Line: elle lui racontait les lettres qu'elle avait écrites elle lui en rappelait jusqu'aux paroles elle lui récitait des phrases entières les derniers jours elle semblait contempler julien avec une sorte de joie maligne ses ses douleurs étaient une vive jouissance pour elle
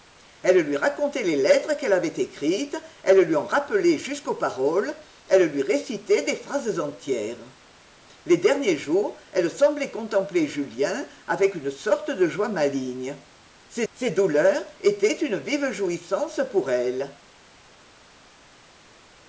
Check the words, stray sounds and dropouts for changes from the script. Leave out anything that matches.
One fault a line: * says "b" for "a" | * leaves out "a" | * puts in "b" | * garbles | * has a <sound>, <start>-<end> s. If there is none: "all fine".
all fine